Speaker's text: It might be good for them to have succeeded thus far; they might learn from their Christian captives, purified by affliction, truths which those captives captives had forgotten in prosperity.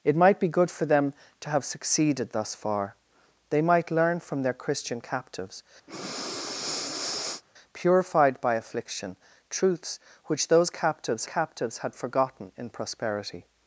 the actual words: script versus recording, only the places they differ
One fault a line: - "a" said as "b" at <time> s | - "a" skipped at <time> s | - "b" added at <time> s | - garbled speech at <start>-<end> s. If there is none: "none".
none